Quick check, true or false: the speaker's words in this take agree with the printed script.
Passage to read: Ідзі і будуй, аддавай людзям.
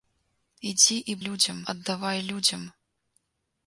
false